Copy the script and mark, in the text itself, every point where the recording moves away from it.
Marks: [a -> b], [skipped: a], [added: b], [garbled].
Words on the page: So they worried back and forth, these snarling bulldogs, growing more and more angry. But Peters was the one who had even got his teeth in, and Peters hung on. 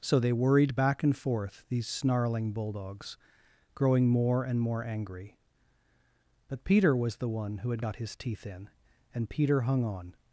So they worried back and forth, these snarling bulldogs, growing more and more angry. But [Peters -> Peter] was the one who had [skipped: even] got his teeth in, and [Peters -> Peter] hung on.